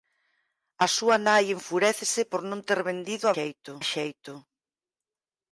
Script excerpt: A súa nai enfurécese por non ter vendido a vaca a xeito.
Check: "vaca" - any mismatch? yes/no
yes